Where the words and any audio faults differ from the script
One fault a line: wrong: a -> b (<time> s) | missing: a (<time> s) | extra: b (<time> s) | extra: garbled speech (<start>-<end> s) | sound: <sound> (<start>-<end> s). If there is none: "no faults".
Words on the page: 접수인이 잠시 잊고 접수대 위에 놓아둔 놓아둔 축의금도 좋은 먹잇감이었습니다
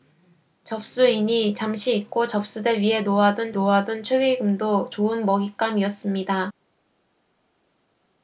no faults